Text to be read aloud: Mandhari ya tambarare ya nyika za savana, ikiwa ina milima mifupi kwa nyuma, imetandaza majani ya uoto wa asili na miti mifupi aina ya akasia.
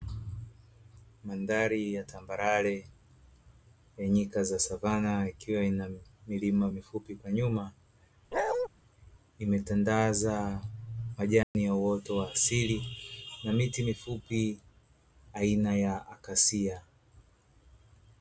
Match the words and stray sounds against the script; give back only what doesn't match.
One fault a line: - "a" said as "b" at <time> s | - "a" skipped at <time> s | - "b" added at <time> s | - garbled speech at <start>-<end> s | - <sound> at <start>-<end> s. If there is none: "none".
- bark at 8.3-8.7 s
- dropout at 11.4-11.5 s